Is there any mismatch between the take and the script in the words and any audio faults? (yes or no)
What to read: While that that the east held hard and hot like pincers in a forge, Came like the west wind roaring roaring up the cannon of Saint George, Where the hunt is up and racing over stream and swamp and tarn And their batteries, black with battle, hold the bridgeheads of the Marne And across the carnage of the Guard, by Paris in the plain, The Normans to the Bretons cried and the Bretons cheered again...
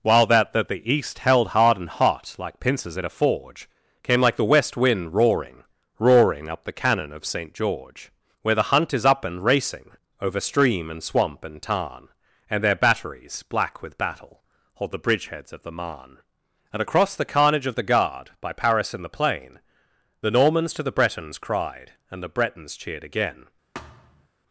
yes